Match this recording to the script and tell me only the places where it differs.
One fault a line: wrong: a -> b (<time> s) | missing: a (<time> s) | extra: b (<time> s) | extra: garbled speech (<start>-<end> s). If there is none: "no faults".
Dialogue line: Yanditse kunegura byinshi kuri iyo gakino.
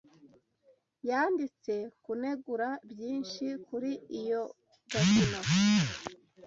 no faults